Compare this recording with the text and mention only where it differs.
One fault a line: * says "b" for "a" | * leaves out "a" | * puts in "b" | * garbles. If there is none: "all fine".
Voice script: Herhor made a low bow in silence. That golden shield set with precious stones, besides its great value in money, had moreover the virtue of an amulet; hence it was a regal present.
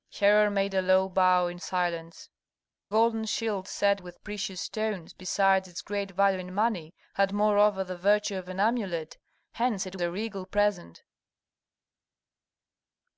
* leaves out "That"
* leaves out "was"